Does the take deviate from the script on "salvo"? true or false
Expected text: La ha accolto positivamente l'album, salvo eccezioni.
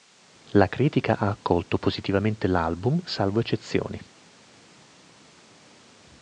false